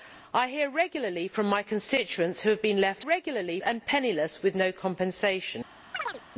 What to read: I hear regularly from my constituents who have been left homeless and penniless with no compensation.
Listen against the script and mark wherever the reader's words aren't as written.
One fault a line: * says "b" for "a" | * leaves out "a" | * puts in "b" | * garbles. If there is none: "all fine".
* says "regularly" for "homeless"